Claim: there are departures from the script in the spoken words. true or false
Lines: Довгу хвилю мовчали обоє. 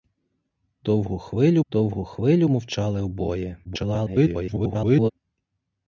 true